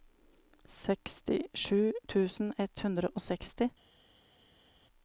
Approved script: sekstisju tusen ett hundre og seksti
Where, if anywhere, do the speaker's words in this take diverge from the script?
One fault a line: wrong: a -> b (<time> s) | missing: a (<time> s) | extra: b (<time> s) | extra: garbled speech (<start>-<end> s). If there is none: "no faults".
no faults